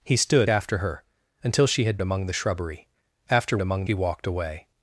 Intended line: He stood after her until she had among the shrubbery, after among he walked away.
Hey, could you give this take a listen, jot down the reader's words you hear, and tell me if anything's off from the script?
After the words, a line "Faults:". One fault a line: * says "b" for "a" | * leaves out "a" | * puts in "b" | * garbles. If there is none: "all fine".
He stood after her until she had among the shrubbery, after among he walked away.
Faults:
all fine